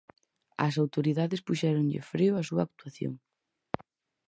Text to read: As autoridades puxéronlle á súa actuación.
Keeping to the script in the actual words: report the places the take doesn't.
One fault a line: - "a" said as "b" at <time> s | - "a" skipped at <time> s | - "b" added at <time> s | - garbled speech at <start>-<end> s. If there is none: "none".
- "freo" added at 2.1 s